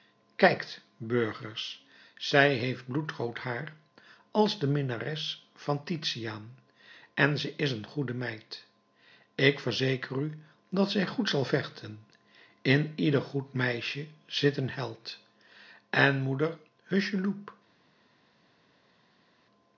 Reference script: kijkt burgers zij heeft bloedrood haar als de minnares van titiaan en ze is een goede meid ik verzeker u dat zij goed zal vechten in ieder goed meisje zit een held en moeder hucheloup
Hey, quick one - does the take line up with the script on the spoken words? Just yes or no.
yes